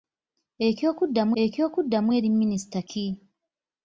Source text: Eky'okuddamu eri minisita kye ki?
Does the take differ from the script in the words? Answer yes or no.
yes